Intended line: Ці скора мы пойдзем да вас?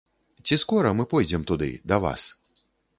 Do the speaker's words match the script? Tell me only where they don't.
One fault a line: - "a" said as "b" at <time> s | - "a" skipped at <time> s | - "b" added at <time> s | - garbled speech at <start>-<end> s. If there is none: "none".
- "туды" added at 1.5 s